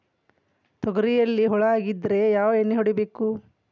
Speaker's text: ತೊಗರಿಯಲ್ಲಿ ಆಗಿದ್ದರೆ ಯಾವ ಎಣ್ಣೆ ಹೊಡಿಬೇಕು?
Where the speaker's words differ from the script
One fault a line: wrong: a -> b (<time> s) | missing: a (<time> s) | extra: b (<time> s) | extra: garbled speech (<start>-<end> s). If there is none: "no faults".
extra: ಹುಳ (1.4 s)